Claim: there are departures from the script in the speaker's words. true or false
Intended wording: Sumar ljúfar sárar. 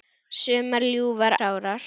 false